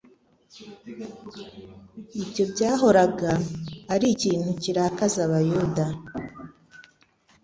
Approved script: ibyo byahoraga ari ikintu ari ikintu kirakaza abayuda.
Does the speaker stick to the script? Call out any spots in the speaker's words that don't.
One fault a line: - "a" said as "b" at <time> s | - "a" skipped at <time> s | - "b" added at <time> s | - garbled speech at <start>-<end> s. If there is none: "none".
- "ari ikintu" skipped at 4.5 s